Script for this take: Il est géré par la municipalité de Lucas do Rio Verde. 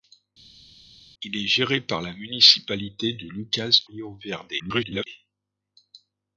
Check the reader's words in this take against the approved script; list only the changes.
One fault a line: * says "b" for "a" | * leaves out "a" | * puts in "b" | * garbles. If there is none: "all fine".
* leaves out "do"
* garbles